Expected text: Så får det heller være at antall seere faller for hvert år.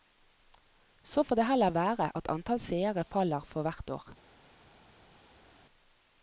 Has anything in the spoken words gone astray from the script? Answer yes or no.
no